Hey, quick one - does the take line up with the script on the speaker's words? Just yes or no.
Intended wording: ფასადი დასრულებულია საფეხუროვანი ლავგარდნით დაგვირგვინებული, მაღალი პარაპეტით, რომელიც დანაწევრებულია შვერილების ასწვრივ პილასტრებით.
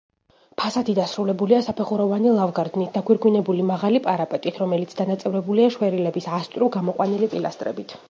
no